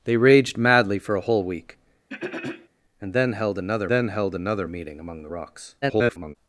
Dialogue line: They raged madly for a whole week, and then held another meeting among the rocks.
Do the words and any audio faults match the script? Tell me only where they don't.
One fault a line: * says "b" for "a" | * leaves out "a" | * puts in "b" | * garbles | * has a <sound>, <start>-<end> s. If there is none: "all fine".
* has a throat clearing, 2.1-2.7 s
* puts in "then held another"
* garbles